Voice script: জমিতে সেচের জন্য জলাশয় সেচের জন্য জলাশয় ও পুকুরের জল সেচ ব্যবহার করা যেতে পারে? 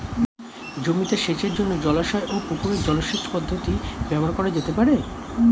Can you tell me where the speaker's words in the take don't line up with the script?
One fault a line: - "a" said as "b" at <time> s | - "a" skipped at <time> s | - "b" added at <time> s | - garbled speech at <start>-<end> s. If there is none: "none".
- "সেচের জন্য জলাশয়" skipped at 2.3 s
- "পদ্ধতি" added at 3.3 s